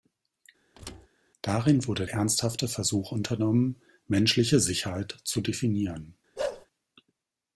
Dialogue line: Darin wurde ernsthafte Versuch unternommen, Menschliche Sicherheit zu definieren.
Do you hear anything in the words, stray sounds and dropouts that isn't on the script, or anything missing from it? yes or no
yes